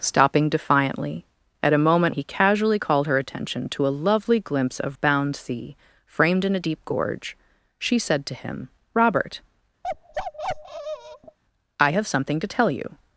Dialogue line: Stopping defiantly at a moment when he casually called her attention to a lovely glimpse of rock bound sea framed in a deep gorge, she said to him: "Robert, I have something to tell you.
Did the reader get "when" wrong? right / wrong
wrong